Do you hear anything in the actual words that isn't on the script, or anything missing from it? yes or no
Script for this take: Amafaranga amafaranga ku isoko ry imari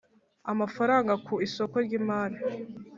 yes